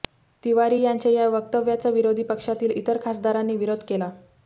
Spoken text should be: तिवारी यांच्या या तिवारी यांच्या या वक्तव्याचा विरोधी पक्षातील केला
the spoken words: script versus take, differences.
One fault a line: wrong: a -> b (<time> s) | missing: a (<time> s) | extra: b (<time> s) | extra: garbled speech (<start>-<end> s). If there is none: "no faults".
wrong: तिवारी यांच्या या वक्तव्याचा विरोधी पक्षातील -> वक्तव्याचा विरोधी पक्षातील इतर खासदारांनी विरोध (1.3 s)